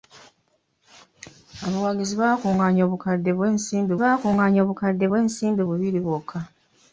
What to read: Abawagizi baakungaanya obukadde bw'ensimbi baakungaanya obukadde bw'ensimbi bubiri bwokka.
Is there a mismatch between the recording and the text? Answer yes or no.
no